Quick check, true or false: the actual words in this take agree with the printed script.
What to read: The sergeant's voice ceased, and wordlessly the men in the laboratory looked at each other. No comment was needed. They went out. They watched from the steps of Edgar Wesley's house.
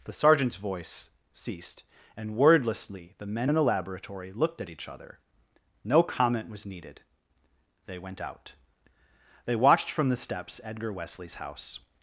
false